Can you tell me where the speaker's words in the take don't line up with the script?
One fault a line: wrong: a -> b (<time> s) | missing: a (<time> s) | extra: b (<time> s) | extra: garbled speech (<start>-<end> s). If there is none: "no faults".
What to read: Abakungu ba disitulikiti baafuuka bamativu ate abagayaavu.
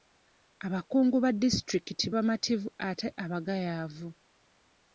missing: baafuuka (2.1 s)